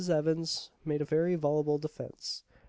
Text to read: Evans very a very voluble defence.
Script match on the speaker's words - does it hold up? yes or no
no